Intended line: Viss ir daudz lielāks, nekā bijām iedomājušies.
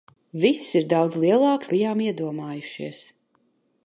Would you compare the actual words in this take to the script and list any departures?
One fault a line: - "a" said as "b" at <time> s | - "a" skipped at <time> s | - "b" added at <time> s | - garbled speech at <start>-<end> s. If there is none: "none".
- "nekā" skipped at 1.7 s